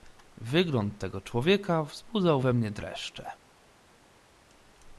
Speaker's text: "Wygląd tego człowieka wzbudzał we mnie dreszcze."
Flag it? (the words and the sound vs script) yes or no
no